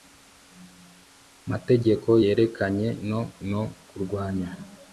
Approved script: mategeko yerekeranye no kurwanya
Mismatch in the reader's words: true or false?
true